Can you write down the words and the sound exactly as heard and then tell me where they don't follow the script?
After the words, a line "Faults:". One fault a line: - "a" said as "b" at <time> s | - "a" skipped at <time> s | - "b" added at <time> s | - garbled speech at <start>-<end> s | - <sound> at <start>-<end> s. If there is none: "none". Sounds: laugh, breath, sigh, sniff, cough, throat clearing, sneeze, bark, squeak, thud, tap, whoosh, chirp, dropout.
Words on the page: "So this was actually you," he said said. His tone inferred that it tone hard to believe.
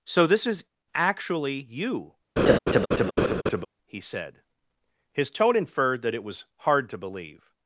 "So this is actually you," he said. His tone inferred that it was hard to believe.
Faults:
- "was" said as "is" at 0.5 s
- laugh at 2.4-3.7 s
- "said" skipped at 4.4 s
- "tone" said as "was" at 6.2 s